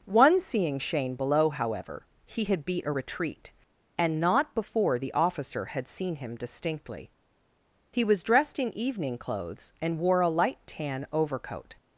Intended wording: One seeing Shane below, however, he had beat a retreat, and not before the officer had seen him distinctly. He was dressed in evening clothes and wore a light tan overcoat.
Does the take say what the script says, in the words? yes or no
yes